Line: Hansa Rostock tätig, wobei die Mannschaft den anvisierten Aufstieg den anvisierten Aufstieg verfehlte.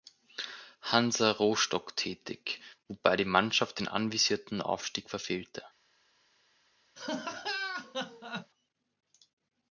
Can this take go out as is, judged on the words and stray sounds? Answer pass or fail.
fail